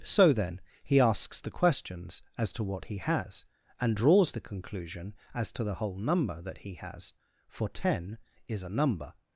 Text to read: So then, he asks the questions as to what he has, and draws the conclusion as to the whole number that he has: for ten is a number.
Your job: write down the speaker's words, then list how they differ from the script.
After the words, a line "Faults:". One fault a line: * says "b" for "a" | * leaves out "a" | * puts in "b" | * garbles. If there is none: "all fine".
So then, he asks the questions as to what he has, and draws the conclusion as to the whole number that he has: for ten is a number.
Faults:
all fine